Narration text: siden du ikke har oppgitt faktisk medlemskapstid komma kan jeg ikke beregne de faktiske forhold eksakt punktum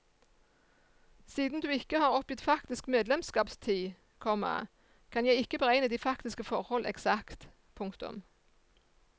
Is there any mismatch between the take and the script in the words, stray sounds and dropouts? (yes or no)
no